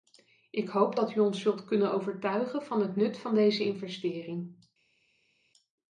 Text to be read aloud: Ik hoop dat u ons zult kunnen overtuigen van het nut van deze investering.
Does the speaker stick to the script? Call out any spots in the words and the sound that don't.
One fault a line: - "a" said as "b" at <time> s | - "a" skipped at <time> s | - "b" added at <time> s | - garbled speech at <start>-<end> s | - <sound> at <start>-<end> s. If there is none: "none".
none